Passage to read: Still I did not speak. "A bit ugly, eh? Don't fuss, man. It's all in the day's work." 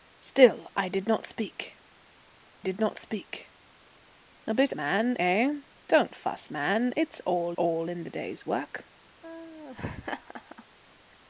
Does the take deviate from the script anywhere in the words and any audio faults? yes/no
yes